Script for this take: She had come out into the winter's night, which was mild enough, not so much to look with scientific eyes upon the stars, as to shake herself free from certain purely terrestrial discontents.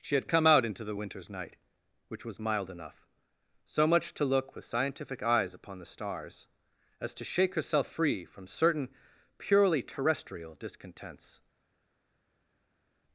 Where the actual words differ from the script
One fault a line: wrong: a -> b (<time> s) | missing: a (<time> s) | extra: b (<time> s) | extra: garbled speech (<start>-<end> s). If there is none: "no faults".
missing: not (3.1 s)